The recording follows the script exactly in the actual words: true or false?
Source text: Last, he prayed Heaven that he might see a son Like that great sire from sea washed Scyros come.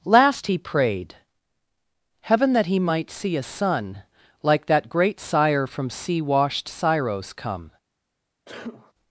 true